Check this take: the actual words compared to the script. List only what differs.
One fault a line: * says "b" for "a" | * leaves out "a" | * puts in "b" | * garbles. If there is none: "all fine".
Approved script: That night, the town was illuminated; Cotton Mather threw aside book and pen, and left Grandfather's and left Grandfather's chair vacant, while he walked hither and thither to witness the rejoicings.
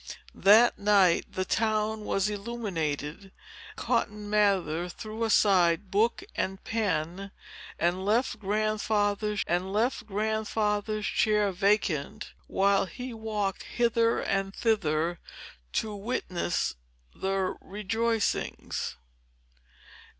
all fine